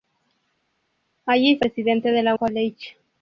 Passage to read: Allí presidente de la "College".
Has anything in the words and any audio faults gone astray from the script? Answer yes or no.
no